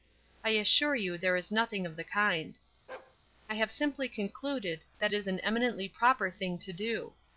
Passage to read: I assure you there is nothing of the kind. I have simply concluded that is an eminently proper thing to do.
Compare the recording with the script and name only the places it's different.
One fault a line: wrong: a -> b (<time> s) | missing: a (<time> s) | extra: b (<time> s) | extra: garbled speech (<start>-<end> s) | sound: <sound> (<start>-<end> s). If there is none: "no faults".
sound: bark (2.9-3.2 s)